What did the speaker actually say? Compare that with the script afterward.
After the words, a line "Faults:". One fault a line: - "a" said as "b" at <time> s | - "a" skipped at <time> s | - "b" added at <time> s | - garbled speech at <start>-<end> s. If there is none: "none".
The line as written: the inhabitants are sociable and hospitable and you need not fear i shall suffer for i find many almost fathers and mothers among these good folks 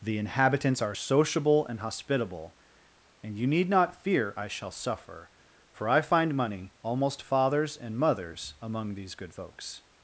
the inhabitants are sociable and hospitable and you need not fear i shall suffer for i find money almost fathers and mothers among these good folks
Faults:
- "many" said as "money" at 6.3 s